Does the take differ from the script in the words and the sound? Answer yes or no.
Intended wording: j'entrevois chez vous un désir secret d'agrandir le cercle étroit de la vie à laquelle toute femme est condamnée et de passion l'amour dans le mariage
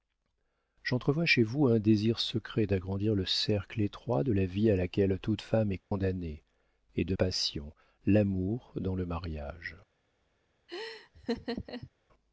yes